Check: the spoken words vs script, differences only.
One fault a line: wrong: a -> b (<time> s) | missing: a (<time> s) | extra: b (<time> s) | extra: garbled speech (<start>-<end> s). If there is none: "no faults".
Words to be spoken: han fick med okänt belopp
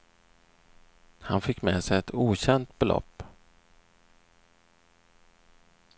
extra: sig ett (1.8 s)